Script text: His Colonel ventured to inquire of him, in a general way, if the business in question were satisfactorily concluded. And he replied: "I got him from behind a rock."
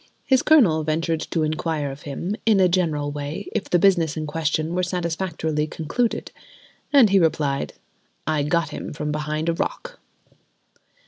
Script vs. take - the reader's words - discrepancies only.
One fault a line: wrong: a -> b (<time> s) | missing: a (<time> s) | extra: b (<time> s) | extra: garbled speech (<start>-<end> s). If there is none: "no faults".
no faults